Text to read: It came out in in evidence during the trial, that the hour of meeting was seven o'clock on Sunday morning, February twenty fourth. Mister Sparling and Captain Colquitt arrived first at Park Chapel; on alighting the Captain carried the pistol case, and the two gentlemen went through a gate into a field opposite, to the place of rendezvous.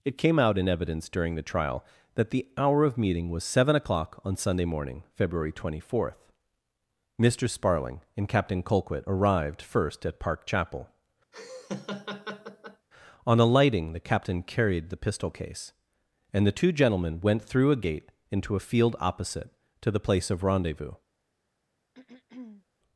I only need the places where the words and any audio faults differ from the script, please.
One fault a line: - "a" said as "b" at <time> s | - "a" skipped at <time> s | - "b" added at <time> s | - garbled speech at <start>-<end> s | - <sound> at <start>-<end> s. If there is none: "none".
- "in" skipped at 0.7 s
- laugh at 11.3-12.9 s
- throat clearing at 21.9-22.6 s